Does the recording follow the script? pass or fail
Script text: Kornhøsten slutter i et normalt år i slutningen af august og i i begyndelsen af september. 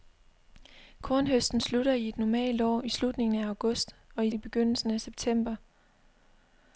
pass